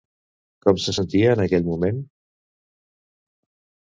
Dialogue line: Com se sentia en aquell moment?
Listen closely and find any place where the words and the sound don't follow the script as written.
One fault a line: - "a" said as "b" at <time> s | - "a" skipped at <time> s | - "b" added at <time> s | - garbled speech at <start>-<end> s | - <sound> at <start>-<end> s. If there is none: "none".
none